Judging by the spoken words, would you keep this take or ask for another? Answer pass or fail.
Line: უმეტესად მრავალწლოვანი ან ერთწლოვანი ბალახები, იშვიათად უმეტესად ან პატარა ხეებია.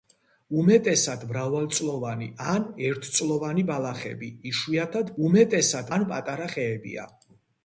pass